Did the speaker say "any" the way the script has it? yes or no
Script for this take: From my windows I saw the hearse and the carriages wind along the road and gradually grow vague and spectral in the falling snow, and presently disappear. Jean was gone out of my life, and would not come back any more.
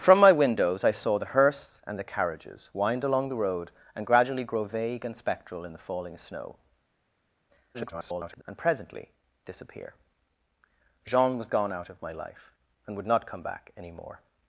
yes